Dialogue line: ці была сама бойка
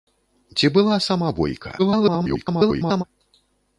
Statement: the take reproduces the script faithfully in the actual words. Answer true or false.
false